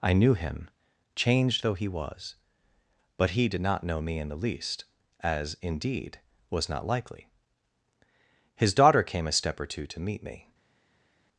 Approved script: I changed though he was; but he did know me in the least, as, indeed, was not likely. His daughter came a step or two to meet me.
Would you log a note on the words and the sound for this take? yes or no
yes